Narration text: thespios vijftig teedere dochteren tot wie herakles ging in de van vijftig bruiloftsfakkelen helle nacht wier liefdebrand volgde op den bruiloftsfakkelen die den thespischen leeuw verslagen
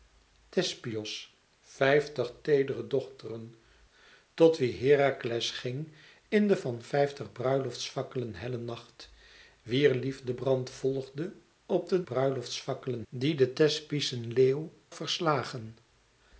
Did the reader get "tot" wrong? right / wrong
right